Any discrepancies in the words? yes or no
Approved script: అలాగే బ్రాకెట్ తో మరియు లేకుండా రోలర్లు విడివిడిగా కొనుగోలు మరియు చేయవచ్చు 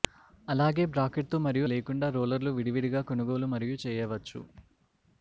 no